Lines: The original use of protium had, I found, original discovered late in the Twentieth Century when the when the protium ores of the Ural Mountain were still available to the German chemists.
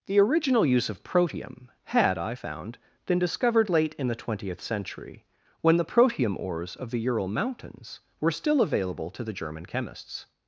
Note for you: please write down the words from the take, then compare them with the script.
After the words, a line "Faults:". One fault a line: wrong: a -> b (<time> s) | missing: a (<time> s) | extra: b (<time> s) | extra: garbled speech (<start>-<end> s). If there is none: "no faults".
The original use of protium had, I found, been discovered late in the Twentieth Century when the protium ores of the Ural Mountains were still available to the German chemists.
Faults:
wrong: original -> been (3.0 s)
missing: when the (5.8 s)
wrong: Mountain -> Mountains (7.3 s)